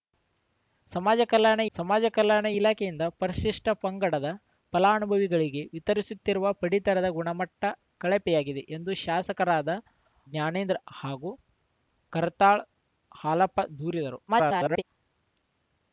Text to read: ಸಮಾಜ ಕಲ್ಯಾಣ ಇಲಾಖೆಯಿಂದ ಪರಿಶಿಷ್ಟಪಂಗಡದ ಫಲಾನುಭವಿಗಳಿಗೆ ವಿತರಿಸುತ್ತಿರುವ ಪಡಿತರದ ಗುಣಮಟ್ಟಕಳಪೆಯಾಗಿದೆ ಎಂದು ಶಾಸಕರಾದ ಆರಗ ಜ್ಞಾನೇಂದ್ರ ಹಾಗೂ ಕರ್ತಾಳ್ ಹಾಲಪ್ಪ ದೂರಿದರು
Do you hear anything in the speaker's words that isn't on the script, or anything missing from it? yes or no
yes